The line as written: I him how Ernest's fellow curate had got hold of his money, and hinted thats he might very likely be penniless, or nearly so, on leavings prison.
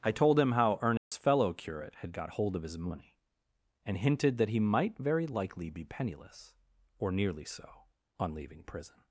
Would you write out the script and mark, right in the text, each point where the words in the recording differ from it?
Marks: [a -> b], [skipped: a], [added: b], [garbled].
I [added: told] him how Ernest's fellow curate had got hold of his money, and hinted [thats -> that] he might very likely be penniless, or nearly so, on [leavings -> leaving] prison.